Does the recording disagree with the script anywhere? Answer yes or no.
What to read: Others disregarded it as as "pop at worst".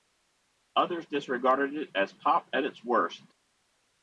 yes